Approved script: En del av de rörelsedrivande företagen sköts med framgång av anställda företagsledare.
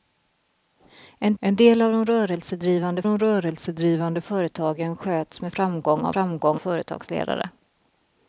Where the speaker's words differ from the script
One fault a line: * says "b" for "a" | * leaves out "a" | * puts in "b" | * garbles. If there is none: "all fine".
* puts in "en"
* puts in "de rörelsedrivande"
* says "framgång" for "anställda"